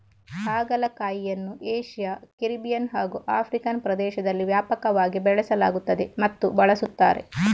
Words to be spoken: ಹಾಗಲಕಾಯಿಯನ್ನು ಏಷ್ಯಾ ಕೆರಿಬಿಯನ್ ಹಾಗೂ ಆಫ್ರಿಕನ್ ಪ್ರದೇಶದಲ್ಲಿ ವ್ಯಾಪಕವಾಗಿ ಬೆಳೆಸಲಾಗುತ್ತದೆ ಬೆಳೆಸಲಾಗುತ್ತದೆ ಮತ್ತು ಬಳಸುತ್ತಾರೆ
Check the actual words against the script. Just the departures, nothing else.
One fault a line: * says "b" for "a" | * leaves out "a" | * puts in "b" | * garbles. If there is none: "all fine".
* leaves out "ಬೆಳೆಸಲಾಗುತ್ತದೆ"